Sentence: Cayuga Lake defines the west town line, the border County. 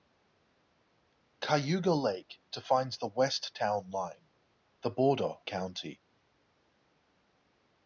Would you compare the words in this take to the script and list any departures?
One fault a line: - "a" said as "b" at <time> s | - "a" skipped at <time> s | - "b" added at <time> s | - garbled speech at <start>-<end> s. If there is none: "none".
none